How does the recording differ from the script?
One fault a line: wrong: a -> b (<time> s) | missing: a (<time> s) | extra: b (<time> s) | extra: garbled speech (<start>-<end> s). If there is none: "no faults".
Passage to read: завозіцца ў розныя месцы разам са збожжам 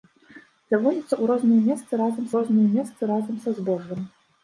extra: розныя месцы разам (2.4 s)